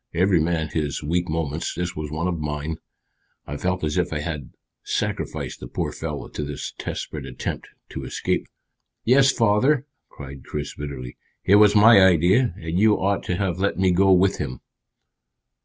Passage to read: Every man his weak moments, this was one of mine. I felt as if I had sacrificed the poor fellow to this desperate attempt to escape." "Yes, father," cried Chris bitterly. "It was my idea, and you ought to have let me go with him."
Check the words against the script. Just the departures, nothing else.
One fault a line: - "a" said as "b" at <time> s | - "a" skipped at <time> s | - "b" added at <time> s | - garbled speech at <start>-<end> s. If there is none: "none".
none